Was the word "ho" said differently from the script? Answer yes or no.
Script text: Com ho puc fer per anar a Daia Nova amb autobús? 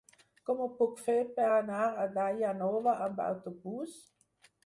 no